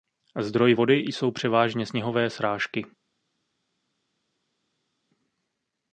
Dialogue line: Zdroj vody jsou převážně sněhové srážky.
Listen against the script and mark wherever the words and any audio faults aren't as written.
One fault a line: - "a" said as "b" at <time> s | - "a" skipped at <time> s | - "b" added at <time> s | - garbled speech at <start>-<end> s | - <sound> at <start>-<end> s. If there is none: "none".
none